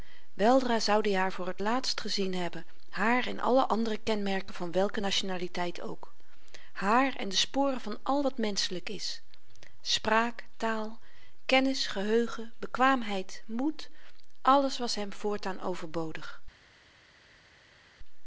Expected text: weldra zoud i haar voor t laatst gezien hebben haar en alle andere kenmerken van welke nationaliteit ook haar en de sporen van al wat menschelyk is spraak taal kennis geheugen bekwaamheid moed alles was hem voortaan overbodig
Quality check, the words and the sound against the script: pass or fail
pass